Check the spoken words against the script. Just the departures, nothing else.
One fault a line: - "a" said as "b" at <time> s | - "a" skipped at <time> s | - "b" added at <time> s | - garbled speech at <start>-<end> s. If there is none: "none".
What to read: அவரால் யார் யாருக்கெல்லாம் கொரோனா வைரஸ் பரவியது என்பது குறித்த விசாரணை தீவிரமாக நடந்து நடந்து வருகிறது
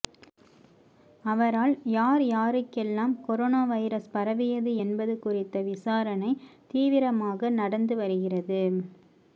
- "நடந்து" skipped at 8.0 s